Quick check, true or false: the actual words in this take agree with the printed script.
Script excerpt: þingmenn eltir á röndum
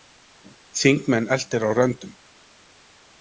true